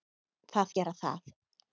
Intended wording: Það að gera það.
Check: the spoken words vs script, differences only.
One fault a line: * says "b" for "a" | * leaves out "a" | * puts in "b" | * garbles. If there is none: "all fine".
all fine